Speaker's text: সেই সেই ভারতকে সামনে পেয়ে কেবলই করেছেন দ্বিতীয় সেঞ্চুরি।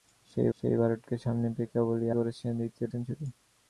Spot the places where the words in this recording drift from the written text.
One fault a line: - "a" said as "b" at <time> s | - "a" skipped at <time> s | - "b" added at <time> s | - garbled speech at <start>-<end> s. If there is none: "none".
none